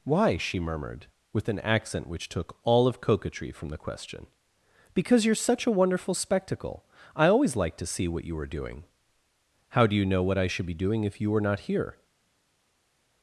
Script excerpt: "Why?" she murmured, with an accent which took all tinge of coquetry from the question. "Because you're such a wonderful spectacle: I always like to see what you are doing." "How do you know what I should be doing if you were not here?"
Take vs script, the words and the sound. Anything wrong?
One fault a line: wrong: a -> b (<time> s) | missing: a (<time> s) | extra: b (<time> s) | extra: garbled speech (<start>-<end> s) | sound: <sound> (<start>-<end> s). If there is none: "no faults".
missing: tinge (2.9 s)